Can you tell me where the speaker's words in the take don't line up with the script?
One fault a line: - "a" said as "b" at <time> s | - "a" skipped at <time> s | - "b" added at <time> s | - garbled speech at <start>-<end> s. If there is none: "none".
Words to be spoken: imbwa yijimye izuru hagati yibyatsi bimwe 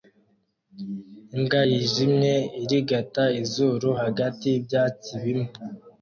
- "irigata" added at 2.6 s